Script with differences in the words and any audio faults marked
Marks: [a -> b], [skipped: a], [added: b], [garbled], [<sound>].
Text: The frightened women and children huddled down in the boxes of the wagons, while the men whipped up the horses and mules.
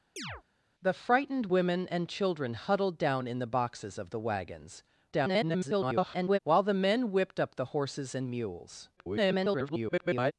[chirp] The frightened women and children huddled down in the boxes of the wagons, [garbled] while the men whipped up the horses and mules. [garbled]